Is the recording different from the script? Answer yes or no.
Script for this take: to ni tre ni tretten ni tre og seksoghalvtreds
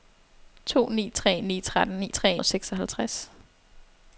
no